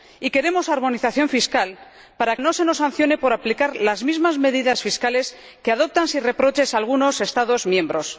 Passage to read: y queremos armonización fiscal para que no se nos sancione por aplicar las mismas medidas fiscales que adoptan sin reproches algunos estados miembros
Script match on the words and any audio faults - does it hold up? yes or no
no